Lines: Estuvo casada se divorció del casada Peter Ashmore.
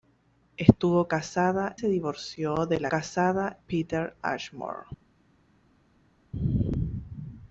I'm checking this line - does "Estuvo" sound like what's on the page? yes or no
yes